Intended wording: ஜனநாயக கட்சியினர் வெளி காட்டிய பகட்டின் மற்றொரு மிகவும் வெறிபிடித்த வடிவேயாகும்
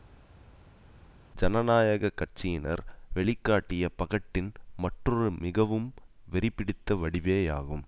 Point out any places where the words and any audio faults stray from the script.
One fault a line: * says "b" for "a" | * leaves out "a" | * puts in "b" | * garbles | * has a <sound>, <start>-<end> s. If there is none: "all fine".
all fine